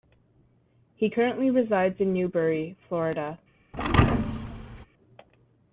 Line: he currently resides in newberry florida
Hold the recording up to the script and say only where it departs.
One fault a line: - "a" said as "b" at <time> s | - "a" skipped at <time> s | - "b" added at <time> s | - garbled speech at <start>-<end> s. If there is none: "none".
none